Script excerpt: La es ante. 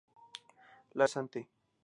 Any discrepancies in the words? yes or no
no